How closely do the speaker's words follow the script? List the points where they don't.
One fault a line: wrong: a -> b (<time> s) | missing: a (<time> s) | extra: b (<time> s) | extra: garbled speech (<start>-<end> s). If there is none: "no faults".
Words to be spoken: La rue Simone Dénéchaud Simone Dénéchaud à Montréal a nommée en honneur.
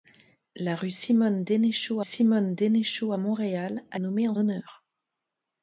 no faults